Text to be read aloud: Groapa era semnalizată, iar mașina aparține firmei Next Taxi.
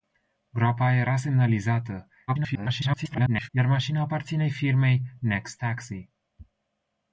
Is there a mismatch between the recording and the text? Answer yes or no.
yes